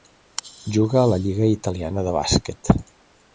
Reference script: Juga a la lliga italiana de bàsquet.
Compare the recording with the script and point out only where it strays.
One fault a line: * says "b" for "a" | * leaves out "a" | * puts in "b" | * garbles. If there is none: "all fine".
all fine